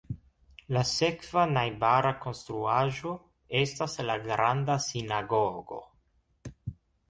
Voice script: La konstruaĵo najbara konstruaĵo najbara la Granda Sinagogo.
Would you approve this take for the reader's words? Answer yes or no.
no